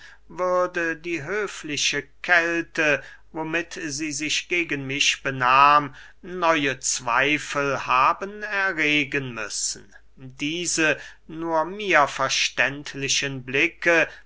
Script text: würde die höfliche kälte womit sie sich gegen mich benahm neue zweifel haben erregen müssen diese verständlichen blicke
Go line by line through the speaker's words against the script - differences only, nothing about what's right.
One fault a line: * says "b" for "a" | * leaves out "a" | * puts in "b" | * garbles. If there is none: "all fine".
* puts in "nur mir"